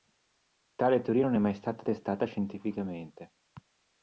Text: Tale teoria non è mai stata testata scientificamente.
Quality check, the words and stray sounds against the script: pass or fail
pass